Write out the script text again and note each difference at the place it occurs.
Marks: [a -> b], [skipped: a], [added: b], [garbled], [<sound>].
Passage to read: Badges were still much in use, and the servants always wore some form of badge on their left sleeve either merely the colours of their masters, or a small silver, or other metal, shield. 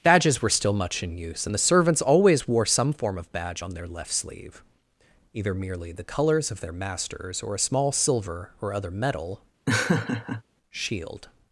Badges were still much in use, and the servants always wore some form of badge on their left sleeve either merely the colours of their masters, or a small silver, or other metal, [laugh] shield.